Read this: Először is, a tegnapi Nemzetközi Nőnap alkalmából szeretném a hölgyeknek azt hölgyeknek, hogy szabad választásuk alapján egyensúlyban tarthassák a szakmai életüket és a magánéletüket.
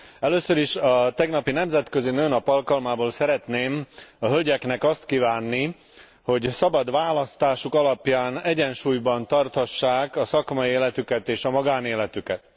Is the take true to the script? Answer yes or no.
no